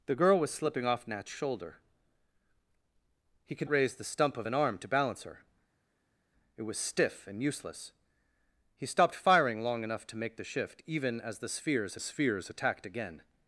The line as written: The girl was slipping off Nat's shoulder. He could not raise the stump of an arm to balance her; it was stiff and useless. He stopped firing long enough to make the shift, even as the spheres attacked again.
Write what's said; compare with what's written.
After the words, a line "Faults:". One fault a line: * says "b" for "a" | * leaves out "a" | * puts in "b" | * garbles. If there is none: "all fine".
The girl was slipping off Nat's shoulder. He could raise the stump of an arm to balance her; it was stiff and useless. He stopped firing long enough to make the shift, even as the spheres spheres attacked again.
Faults:
* leaves out "not"
* puts in "spheres"